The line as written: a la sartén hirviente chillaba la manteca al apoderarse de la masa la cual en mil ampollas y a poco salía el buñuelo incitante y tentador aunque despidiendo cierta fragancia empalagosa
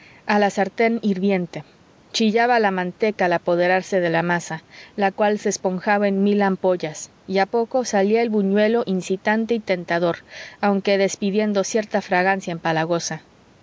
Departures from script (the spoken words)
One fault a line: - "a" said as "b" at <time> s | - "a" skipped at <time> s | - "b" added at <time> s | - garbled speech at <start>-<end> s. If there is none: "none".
- "se esponjaba" added at 5.4 s